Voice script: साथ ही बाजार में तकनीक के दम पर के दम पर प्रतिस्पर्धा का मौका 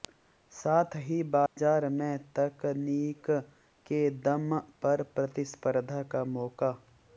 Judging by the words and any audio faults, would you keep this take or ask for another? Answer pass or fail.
fail